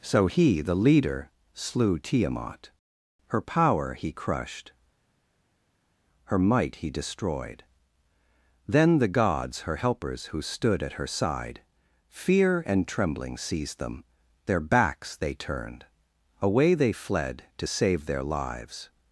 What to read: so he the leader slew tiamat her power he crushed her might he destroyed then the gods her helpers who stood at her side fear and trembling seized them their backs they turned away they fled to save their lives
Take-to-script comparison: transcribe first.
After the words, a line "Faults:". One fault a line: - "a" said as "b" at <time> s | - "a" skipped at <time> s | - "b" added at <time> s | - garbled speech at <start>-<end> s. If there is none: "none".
so he the leader slew tiamat her power he crushed her might he destroyed then the gods her helpers who stood at her side fear and trembling seized them their backs they turned away they fled to save their lives
Faults:
none